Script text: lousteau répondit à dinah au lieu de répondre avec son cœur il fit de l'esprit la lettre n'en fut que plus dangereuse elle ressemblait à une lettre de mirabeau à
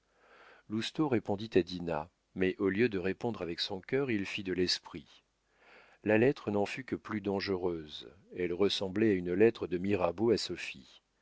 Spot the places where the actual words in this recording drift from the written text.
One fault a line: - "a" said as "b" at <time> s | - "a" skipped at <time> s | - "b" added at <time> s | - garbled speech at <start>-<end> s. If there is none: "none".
- "mais" added at 2.3 s